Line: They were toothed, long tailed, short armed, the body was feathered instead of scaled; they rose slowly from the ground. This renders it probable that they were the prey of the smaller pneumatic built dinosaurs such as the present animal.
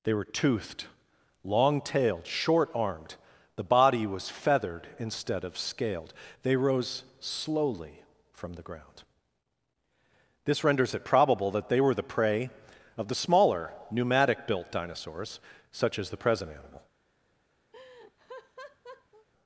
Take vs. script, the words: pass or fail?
pass